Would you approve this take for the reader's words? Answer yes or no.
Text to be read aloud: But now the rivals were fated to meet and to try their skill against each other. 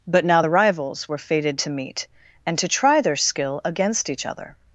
yes